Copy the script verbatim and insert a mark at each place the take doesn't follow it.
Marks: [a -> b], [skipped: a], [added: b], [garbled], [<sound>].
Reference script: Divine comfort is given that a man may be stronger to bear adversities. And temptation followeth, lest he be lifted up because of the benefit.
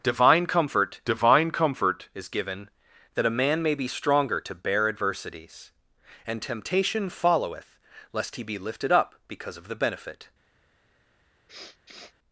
Divine comfort [added: divine comfort] is given that a man may be stronger to bear adversities. And temptation followeth, lest he be lifted up because of the benefit. [sniff]